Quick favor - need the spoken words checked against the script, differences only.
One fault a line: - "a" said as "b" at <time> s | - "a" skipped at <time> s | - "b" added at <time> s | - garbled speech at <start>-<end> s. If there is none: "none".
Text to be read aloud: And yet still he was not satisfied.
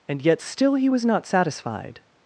none